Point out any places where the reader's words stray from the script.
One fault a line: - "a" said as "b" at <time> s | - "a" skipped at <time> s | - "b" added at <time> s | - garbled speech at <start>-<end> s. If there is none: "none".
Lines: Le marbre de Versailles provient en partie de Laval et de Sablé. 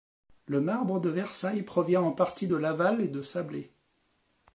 none